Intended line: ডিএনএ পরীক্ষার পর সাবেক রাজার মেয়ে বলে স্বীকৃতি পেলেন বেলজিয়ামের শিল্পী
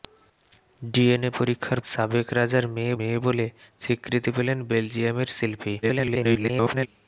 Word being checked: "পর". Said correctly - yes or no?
no